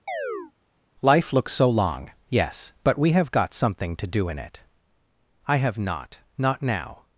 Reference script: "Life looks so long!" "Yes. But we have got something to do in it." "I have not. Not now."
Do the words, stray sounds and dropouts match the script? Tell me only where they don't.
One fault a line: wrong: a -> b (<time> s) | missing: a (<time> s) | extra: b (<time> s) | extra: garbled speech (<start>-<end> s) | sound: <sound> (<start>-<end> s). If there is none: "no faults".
sound: chirp (0.1-0.5 s)